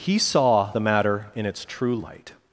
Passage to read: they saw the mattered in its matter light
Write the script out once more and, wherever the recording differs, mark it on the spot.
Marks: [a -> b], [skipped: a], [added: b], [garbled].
[they -> he] saw the [mattered -> matter] in its [matter -> true] light